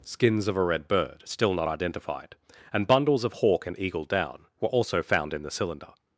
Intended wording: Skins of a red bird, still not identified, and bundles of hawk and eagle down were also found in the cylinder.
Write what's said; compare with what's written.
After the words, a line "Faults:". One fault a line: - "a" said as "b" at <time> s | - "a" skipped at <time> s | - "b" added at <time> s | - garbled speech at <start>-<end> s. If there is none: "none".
Skins of a red bird, still not identified, and bundles of hawk and eagle down were also found in the cylinder.
Faults:
none